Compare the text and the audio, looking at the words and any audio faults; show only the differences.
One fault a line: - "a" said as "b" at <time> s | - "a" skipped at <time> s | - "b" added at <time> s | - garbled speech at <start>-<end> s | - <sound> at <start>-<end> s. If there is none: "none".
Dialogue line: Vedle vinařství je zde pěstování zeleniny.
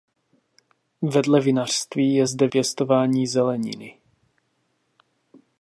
none